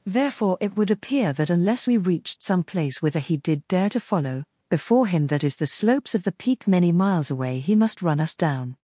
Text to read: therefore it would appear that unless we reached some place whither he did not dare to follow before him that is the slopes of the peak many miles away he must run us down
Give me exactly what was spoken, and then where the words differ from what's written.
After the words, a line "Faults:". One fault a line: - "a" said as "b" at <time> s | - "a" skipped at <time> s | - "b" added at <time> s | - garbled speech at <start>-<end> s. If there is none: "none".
therefore it would appear that unless we reached some place whither he did dare to follow before him that is the slopes of the peak many miles away he must run us down
Faults:
- "not" skipped at 3.7 s